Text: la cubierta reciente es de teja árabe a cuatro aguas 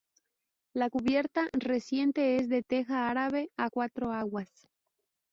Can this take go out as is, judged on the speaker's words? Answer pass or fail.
pass